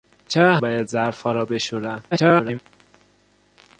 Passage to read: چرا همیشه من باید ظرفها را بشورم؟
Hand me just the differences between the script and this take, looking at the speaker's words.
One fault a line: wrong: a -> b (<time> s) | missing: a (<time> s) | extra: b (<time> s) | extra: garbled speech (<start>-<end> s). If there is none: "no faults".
missing: همیشه من (0.6 s)
extra: garbled speech (2.1-2.6 s)